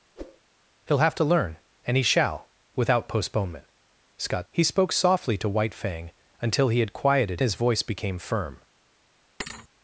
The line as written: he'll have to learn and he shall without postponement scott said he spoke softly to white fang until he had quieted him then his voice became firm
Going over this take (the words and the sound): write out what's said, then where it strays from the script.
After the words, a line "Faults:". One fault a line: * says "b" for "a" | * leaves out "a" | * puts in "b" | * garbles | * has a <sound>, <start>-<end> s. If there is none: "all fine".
he'll have to learn and he shall without postponement scott he spoke softly to white fang until he had quieted his voice became firm
Faults:
* has a whoosh, 0.2-0.4 s
* leaves out "said"
* leaves out "him then"
* has a thud, 9.4-9.7 s